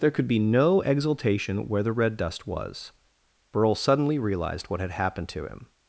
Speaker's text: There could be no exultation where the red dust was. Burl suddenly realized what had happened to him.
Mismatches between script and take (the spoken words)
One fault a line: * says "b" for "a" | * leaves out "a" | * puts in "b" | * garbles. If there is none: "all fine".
all fine